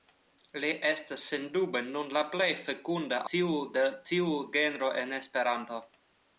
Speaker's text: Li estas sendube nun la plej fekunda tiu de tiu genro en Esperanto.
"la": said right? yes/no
yes